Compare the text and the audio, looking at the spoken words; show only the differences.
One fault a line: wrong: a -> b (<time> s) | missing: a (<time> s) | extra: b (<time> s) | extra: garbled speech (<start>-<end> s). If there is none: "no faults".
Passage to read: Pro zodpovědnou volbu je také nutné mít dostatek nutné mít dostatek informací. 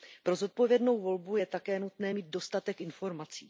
missing: nutné mít dostatek (2.8 s)